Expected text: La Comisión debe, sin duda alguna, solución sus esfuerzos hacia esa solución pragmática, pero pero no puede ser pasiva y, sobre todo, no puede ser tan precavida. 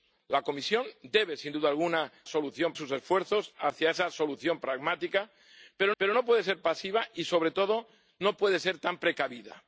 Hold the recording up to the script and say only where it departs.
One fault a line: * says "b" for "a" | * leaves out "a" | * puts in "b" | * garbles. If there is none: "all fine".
all fine